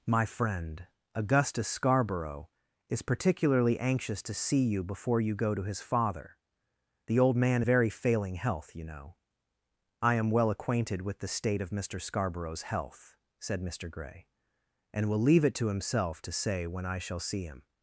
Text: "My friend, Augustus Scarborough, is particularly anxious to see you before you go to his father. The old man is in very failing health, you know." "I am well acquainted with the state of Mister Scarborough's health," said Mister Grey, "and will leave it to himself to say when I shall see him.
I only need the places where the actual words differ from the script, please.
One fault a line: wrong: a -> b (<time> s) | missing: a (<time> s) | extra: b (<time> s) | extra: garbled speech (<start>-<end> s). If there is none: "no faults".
missing: is in (7.6 s)